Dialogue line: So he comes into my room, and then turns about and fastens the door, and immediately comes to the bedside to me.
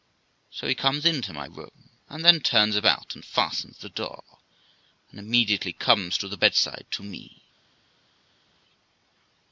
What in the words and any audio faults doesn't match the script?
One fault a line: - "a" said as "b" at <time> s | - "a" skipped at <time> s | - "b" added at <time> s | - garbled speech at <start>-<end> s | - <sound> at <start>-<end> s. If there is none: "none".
none